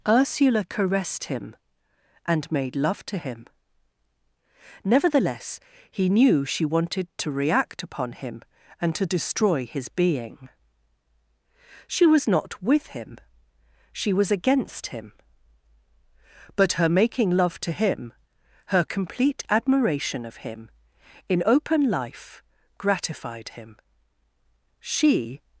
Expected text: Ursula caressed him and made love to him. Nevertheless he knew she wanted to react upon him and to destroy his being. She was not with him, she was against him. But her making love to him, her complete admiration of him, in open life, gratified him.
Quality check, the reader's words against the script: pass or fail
fail